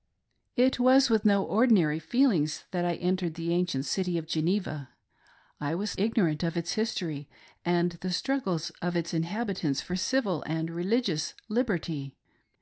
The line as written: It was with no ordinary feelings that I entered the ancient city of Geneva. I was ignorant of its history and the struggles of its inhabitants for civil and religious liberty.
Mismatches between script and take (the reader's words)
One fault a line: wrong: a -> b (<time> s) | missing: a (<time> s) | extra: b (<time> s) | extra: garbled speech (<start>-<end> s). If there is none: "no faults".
no faults